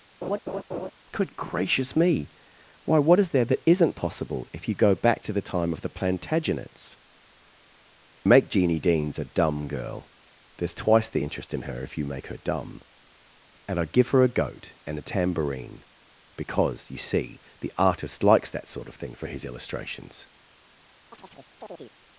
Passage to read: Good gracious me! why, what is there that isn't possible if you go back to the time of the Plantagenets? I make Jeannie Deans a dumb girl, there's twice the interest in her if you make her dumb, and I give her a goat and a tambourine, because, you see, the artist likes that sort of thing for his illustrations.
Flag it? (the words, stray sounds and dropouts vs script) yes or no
yes